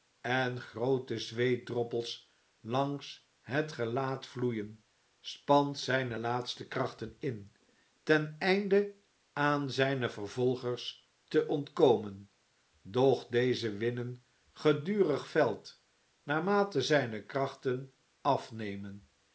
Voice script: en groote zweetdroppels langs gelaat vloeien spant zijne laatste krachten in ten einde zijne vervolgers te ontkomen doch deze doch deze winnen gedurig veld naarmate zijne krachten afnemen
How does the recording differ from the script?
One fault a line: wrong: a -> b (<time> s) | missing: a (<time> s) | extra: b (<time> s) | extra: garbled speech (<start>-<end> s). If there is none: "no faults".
extra: het (3.4 s)
extra: aan (9.3 s)
missing: doch deze (13.7 s)